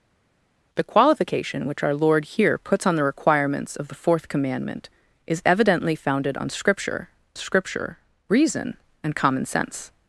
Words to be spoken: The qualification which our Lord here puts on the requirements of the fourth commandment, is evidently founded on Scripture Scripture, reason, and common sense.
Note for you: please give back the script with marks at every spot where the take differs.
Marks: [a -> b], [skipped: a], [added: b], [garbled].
The qualification which our Lord here puts on the requirements of the fourth commandment, is evidently founded on Scripture Scripture, reason, and common sense.